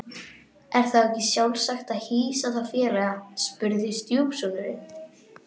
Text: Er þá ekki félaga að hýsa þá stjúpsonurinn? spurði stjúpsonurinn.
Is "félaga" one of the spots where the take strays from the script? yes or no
yes